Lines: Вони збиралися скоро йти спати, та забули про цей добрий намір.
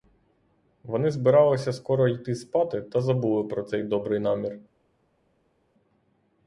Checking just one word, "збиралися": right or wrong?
right